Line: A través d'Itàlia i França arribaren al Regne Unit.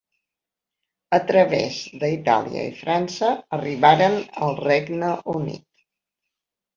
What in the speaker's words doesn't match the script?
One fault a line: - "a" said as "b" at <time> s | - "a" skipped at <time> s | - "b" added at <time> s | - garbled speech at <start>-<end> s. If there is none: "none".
none